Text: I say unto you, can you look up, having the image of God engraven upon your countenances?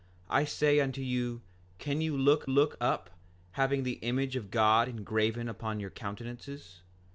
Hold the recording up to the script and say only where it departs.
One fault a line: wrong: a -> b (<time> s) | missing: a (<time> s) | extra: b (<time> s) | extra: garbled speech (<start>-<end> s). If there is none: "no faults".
extra: look (2.5 s)